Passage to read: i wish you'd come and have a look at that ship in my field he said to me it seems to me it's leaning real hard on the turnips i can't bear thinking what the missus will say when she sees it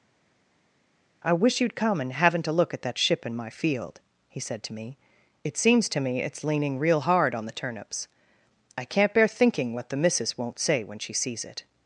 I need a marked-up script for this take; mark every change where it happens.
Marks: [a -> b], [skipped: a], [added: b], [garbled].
i wish you'd come and [have -> haven't] a look at that ship in my field he said to me it seems to me it's leaning real hard on the turnips i can't bear thinking what the missus [will -> won't] say when she sees it